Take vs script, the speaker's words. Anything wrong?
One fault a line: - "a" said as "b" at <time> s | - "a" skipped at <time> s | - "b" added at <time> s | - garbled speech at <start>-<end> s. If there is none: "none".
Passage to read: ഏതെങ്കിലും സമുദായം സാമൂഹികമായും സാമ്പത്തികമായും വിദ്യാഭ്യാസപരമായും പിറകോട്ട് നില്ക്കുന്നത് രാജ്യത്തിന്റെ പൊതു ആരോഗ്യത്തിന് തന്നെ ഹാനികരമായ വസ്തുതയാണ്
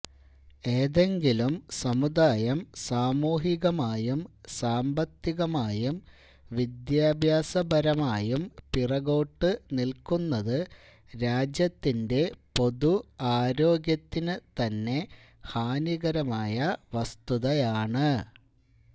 none